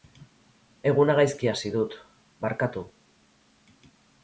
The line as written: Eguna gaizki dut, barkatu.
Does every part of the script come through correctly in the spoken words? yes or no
no